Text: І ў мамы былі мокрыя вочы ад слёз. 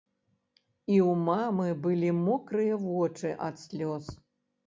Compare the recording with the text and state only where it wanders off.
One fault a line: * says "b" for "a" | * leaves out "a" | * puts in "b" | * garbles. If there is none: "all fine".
all fine